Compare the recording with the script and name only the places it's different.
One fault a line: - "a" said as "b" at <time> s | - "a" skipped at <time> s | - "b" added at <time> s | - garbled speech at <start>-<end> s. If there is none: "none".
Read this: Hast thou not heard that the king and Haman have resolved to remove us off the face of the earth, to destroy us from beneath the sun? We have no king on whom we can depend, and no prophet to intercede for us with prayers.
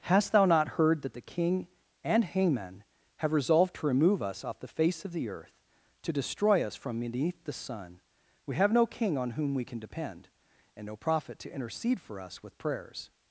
none